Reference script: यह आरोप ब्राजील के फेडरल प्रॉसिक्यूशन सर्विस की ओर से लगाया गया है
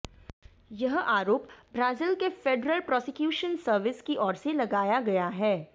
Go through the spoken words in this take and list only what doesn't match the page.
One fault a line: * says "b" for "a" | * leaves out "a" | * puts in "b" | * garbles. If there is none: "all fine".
all fine